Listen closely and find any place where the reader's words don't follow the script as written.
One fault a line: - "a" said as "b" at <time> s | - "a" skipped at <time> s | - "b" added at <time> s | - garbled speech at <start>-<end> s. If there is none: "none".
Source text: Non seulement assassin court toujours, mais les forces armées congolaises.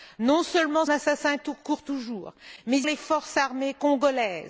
none